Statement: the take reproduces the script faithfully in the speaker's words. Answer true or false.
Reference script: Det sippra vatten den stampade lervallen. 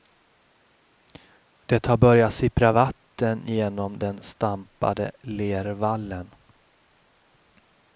false